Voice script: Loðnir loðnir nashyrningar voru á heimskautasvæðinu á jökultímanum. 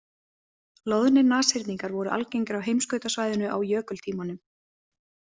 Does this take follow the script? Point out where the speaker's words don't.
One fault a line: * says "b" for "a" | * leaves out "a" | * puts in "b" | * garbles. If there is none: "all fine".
* leaves out "loðnir"
* puts in "algengir"